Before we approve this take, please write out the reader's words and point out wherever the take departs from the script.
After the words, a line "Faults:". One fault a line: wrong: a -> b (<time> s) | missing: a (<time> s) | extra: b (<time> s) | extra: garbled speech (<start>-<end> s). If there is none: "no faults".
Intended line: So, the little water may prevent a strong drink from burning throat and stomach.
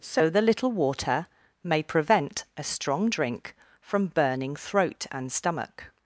So, the little water may prevent a strong drink from burning throat and stomach.
Faults:
no faults